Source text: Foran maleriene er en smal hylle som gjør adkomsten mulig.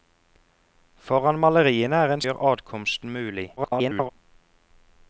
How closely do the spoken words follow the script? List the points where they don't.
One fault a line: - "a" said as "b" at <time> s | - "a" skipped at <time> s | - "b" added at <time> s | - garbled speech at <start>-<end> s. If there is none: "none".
- "smal hylle som" skipped at 2.2 s
- garbled speech at 3.6-4.1 s